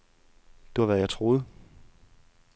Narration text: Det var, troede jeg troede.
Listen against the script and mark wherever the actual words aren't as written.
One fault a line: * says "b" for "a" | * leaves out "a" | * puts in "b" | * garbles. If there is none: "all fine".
* says "hvad" for "troede"